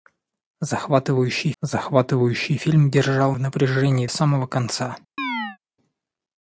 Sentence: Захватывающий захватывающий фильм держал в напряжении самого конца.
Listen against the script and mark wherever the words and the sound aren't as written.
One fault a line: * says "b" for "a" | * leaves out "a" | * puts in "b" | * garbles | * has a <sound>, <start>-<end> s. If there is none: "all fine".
* has a chirp, 5.2-5.6 s